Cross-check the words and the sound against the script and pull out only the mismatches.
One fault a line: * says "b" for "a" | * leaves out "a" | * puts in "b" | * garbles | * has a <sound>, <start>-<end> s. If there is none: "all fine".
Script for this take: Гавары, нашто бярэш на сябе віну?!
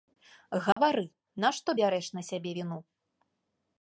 * has a dropout, 0.7-0.8 s